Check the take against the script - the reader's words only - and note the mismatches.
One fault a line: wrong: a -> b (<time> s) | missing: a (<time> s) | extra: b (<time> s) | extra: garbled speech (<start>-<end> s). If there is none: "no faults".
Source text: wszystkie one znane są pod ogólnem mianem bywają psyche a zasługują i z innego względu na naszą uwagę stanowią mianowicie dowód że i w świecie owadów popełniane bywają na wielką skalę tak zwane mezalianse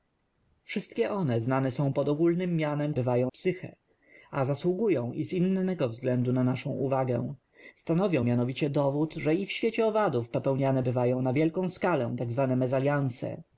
no faults